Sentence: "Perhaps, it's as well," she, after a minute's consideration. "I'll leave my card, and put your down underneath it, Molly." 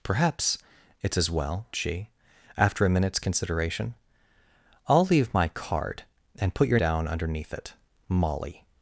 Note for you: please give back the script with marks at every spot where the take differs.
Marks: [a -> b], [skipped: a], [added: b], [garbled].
"Perhaps, it's as well," she, after a minute's consideration. "I'll leave my card, and put your down underneath it, Molly."